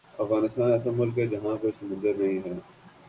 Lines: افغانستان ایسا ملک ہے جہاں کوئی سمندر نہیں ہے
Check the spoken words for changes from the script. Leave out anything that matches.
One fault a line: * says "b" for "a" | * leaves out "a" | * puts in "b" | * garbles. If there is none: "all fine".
all fine